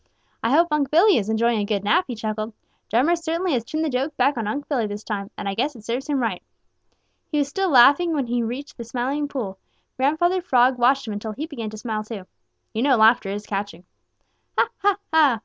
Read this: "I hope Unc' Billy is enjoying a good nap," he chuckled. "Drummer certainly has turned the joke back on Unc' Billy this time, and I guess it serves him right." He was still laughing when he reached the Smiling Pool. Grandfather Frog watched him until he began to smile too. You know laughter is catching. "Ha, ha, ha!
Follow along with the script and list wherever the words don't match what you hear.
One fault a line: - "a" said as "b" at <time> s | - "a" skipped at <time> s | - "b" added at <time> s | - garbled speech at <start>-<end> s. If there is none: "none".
none